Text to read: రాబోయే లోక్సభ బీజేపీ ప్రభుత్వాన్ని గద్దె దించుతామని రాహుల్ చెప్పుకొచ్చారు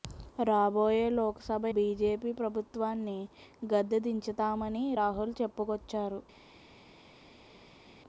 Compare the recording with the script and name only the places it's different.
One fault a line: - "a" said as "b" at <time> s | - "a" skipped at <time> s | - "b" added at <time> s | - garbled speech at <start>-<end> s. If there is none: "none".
none